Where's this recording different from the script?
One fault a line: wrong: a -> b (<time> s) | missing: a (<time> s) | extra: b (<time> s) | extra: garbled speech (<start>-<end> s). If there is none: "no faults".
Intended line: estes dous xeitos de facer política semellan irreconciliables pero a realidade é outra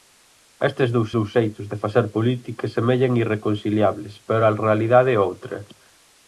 extra: dous (1.2 s)